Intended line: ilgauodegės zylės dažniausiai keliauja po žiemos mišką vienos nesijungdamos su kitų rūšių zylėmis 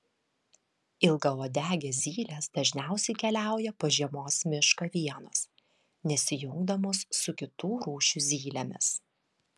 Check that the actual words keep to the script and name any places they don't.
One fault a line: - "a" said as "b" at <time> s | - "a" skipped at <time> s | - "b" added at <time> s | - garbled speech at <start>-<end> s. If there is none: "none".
none